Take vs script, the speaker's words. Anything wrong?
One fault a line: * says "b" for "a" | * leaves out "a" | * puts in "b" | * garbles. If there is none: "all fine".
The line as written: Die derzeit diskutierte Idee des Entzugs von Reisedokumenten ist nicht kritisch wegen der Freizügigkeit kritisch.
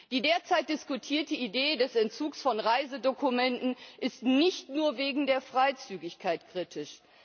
* says "nur" for "kritisch"